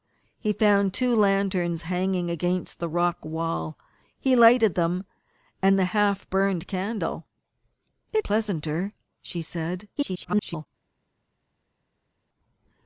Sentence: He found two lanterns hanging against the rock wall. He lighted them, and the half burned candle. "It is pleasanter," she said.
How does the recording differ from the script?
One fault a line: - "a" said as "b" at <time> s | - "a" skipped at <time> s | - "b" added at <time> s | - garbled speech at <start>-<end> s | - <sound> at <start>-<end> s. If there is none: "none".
- "is" skipped at 8.2 s
- garbled speech at 9.9-10.7 s